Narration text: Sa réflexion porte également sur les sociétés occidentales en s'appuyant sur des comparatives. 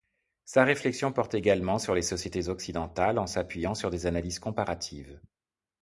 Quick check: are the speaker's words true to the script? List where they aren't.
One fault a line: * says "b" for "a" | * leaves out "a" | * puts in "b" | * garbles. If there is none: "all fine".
* puts in "analyses"